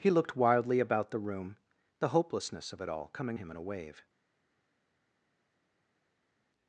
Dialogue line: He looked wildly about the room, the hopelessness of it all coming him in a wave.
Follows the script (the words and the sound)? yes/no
yes